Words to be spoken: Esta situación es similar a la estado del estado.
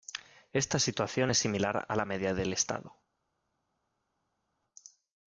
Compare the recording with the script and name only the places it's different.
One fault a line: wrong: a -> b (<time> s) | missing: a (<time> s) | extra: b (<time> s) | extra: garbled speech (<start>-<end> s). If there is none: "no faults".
wrong: estado -> media (2.0 s)